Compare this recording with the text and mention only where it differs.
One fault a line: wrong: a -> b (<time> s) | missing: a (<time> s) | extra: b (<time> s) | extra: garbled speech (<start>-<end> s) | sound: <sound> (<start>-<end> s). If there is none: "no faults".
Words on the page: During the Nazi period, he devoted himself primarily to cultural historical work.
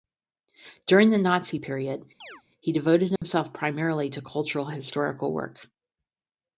sound: chirp (2.2-2.4 s)
sound: dropout (3.2-3.2 s)